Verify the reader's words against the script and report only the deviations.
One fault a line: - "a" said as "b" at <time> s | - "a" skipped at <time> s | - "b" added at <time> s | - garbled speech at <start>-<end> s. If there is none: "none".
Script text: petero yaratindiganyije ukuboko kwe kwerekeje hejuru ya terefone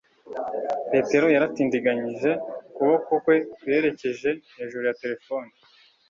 none